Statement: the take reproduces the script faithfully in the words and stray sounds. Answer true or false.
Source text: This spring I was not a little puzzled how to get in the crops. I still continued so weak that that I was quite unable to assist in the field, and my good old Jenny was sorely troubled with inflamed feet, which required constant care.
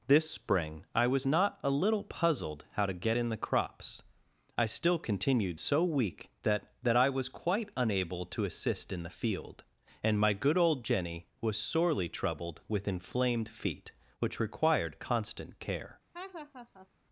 false